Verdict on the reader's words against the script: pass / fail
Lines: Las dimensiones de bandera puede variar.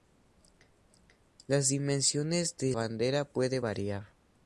pass